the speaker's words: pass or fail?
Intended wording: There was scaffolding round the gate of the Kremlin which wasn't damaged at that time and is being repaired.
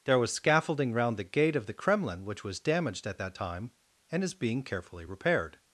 fail